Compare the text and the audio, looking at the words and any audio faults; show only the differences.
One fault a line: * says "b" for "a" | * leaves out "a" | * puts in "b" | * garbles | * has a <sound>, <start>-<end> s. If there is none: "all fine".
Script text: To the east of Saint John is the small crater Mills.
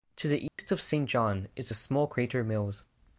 * has a dropout, 0.5-0.6 s